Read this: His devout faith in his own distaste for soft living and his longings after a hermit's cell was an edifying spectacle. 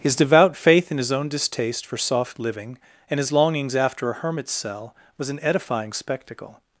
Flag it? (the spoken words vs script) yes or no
no